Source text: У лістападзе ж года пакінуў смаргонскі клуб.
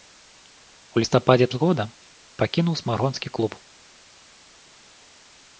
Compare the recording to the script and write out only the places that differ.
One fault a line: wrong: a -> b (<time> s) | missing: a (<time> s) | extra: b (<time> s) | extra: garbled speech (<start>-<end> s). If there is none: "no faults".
no faults